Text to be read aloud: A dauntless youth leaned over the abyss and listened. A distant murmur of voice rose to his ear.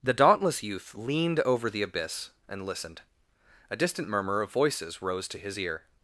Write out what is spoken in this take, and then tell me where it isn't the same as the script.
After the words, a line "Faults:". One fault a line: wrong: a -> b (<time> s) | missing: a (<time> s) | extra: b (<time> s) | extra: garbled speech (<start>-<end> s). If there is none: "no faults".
The dauntless youth leaned over the abyss and listened. A distant murmur of voices rose to his ear.
Faults:
wrong: A -> The (0.0 s)
wrong: voice -> voices (4.5 s)